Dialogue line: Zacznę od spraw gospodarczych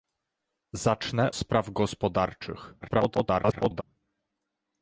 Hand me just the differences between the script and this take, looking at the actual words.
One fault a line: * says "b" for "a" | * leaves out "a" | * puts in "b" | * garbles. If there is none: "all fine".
* leaves out "od"
* garbles